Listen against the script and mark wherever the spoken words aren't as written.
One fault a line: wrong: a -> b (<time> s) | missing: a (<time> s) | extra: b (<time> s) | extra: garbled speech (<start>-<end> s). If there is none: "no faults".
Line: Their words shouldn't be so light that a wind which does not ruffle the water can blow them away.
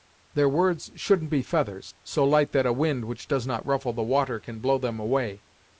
extra: feathers (1.4 s)